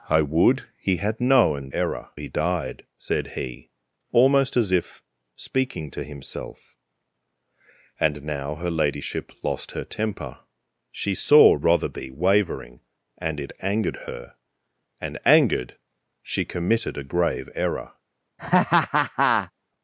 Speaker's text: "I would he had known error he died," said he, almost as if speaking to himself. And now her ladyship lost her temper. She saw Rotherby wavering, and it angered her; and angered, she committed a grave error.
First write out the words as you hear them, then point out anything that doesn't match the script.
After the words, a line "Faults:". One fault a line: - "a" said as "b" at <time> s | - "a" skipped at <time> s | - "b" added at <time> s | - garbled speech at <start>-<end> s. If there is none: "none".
"I would he had known error he died," said he, almost as if speaking to himself. And now her ladyship lost her temper. She saw Rotherby wavering, and it angered her; and angered, she committed a grave error.
Faults:
none